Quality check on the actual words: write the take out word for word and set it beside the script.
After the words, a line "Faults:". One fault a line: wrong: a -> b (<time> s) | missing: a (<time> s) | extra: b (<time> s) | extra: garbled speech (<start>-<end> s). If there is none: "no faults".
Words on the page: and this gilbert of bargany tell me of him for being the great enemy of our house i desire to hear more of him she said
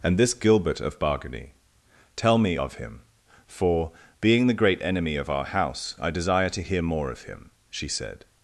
and this gilbert of bargany tell me of him for being the great enemy of our house i desire to hear more of him she said
Faults:
no faults